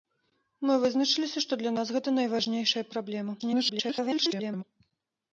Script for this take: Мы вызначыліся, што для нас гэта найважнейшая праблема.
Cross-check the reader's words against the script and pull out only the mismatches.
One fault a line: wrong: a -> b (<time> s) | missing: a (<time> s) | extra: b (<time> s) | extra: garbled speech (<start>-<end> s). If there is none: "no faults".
extra: garbled speech (3.4-4.6 s)